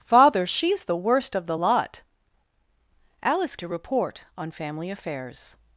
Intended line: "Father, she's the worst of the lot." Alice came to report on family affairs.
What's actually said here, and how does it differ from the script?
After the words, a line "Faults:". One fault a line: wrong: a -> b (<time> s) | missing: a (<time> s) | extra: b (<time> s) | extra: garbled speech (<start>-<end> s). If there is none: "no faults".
"Father, she's the worst of the lot." Alice to report on family affairs.
Faults:
missing: came (3.6 s)